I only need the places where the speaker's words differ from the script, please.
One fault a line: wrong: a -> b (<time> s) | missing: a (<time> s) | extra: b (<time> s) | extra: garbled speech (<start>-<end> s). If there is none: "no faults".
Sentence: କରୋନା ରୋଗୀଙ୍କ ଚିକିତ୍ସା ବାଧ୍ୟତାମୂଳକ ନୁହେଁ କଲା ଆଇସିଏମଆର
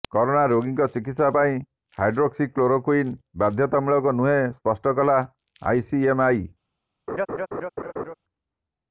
extra: ପାଇଁ ହାଇଡ୍ରୋକ୍ସିକ୍ଲୋରୋକ୍ୱିନ୍ (1.4 s)
extra: ସ୍ପଷ୍ଟ (4.5 s)